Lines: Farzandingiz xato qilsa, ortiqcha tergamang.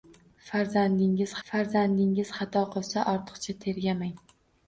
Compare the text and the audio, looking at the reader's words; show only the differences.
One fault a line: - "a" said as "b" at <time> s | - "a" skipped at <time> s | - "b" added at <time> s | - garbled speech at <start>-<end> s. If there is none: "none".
- "farzandingiz" added at 1.5 s